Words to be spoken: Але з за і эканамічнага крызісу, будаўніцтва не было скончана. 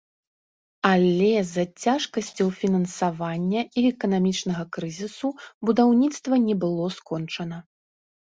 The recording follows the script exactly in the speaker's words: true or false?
false